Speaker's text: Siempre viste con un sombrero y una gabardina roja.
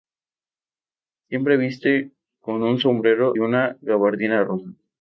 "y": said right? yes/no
no